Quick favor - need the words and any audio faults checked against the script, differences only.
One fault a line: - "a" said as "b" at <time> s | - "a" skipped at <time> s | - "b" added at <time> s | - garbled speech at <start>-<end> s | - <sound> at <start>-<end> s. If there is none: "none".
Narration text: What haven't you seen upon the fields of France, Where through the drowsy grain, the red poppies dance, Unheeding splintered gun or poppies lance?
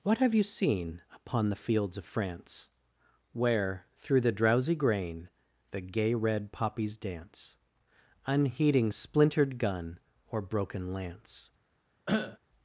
- "haven't" said as "have" at 0.2 s
- "gay" added at 5.8 s
- "poppies" said as "broken" at 10.4 s
- cough at 12.1-12.4 s